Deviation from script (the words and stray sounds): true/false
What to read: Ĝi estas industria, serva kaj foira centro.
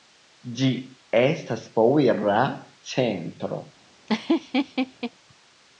true